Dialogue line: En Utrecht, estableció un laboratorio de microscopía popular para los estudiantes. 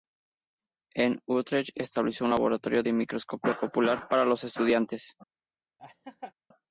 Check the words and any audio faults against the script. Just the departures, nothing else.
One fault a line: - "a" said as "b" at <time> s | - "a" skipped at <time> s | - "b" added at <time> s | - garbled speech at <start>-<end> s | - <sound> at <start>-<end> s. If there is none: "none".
- laugh at 5.8-6.3 s